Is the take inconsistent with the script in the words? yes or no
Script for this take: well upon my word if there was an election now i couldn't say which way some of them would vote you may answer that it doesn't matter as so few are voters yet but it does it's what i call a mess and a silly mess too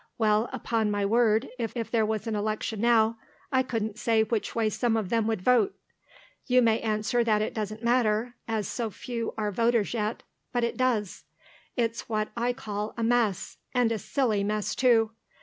yes